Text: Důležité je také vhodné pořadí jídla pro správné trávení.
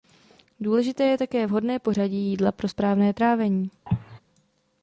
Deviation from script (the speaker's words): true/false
false